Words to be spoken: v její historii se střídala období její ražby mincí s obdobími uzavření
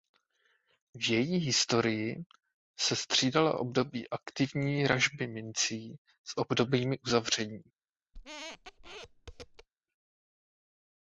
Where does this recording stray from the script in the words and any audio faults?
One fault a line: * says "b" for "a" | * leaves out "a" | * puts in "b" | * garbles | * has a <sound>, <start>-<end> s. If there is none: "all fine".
* says "aktivní" for "její"
* has a squeak, 8.1-9.7 s